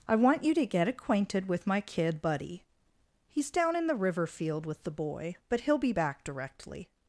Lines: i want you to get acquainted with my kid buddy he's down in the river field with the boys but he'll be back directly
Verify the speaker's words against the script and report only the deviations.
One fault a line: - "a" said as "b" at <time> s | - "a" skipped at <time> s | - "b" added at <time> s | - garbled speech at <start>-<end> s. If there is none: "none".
- "boys" said as "boy" at 4.9 s